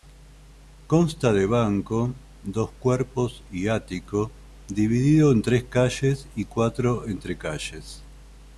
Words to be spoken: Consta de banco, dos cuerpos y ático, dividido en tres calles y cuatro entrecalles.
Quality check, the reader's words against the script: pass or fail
pass